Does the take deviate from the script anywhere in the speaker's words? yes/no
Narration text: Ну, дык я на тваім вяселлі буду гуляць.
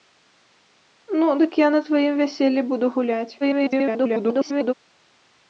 yes